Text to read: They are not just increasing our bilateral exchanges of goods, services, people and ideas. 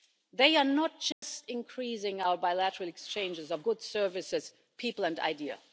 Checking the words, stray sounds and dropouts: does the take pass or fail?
fail